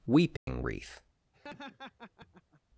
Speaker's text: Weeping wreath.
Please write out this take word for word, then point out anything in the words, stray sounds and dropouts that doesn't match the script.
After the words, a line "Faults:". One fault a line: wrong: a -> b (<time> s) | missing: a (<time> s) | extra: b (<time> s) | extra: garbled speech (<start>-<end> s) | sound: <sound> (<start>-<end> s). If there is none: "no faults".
Weeping wreath.
Faults:
sound: dropout (0.4-0.5 s)
sound: laugh (1.3-2.6 s)